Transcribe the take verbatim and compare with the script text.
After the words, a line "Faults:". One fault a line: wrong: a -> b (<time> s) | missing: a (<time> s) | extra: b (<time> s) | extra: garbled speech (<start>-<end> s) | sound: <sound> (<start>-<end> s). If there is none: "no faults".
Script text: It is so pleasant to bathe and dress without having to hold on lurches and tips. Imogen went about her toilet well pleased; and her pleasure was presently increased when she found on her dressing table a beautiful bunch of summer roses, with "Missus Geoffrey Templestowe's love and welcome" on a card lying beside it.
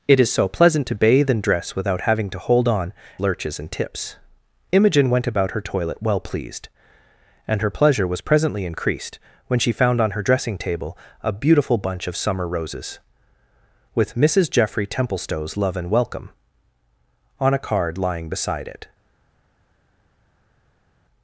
It is so pleasant to bathe and dress without having to hold on lurches and tips. Imogen went about her toilet well pleased; and her pleasure was presently increased when she found on her dressing table a beautiful bunch of summer roses, with "Missus Geoffrey Templestowe's love and welcome" on a card lying beside it.
Faults:
no faults